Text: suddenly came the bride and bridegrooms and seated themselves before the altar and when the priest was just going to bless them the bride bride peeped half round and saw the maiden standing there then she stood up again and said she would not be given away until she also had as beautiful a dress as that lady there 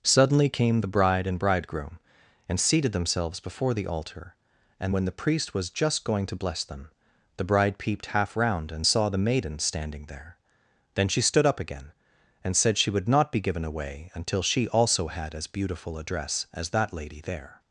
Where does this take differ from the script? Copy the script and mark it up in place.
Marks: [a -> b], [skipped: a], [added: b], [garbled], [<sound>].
suddenly came the bride and [bridegrooms -> bridegroom] and seated themselves before the altar and when the priest was just going to bless them the bride [skipped: bride] peeped half round and saw the maiden standing there then she stood up again and said she would not be given away until she also had as beautiful a dress as that lady there